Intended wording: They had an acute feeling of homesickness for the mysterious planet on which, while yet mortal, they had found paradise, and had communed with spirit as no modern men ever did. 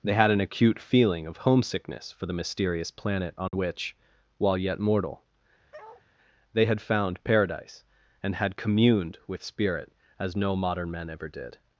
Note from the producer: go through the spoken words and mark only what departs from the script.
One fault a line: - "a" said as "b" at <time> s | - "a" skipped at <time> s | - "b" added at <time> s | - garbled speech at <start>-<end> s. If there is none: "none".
none